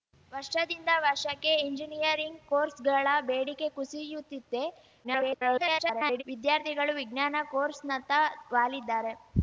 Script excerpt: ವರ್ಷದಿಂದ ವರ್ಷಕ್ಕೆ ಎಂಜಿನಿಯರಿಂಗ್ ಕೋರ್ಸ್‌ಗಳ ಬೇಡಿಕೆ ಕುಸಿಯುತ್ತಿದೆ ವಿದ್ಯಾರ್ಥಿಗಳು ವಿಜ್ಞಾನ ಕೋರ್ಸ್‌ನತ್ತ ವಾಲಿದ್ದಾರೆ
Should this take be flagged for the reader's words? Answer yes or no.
yes